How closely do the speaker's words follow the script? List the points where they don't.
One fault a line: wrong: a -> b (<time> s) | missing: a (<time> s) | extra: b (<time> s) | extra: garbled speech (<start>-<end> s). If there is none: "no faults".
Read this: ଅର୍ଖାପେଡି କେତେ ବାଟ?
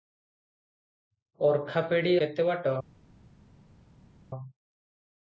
no faults